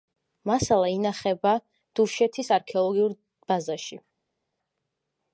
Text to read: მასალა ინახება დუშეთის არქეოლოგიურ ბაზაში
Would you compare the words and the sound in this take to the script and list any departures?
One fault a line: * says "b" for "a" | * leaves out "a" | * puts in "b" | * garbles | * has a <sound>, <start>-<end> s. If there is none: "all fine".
all fine